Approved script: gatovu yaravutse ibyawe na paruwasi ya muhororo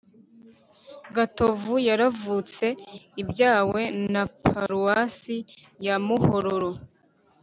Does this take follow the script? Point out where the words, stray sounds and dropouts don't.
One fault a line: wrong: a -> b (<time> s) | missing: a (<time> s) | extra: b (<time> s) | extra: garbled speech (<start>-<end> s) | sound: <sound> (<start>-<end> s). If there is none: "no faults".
sound: dropout (4.7-4.7 s)